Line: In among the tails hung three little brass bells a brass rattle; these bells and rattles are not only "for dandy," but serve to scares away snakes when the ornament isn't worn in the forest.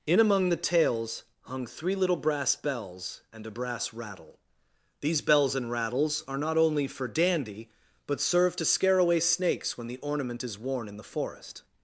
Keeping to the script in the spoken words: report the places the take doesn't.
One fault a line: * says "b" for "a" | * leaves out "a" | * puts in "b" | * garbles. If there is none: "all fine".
* puts in "and"
* says "scare" for "scares"
* says "is" for "isn't"